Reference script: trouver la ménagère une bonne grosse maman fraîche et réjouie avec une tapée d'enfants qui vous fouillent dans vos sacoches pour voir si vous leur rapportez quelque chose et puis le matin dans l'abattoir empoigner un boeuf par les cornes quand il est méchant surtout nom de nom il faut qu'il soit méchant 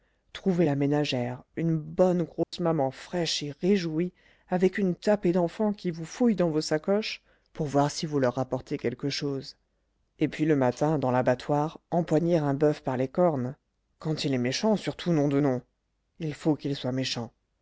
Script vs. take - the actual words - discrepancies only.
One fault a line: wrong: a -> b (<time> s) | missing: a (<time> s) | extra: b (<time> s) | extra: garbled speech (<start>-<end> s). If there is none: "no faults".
no faults